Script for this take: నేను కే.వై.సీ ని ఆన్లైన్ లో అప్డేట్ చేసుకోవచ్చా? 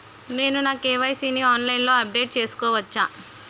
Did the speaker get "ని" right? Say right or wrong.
right